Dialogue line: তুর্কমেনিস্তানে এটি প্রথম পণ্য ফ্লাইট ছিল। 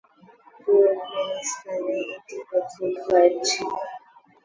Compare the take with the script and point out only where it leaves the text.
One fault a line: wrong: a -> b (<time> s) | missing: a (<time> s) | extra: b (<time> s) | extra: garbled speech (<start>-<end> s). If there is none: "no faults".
missing: পণ্য (2.9 s)